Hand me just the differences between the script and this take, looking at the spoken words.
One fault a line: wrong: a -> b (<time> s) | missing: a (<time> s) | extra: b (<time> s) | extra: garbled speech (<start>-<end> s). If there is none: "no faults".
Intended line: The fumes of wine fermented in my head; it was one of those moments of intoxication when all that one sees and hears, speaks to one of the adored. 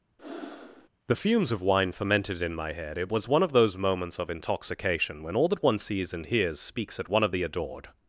wrong: to -> at (7.0 s)